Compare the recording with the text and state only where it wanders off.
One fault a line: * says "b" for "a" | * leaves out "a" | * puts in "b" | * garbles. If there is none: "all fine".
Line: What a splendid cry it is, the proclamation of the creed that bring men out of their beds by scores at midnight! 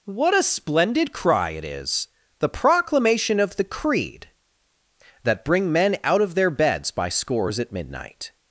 all fine